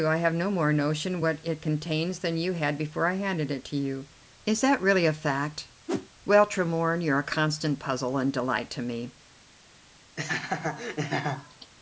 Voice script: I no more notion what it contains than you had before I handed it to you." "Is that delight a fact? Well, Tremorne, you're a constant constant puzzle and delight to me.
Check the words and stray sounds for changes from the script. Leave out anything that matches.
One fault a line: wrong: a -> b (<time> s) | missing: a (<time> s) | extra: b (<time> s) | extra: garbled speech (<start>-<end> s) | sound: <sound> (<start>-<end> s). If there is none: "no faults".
extra: have (0.2 s)
wrong: delight -> really (4.8 s)
sound: whoosh (5.9-6.1 s)
missing: constant (7.8 s)
sound: laugh (10.2-11.7 s)